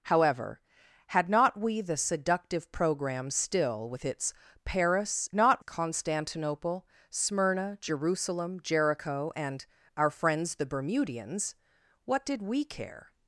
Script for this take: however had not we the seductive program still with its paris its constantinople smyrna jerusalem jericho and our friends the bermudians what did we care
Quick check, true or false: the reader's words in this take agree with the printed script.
false